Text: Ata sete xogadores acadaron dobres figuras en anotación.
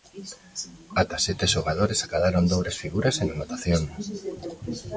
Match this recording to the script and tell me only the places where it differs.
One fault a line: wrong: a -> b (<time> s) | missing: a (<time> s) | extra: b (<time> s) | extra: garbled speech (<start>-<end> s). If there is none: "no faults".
no faults